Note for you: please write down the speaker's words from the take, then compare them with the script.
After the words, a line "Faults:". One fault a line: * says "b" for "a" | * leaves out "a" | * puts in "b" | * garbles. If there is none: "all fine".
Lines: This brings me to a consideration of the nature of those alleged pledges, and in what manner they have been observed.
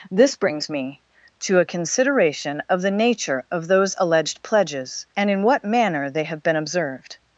This brings me to a consideration of the nature of those alleged pledges, and in what manner they have been observed.
Faults:
all fine